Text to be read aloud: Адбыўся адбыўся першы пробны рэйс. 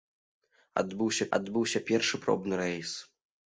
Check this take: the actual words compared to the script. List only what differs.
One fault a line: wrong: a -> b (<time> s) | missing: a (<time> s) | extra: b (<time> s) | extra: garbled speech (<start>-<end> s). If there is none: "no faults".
no faults